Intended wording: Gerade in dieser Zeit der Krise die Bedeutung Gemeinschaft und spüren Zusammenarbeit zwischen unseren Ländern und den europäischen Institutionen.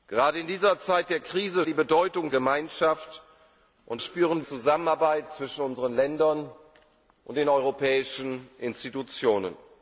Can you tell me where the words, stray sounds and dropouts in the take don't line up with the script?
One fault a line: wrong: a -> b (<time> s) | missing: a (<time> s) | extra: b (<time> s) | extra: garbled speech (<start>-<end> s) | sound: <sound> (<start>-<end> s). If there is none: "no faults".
no faults